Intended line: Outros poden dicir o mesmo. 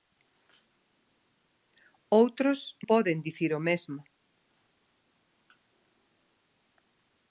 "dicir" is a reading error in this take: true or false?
false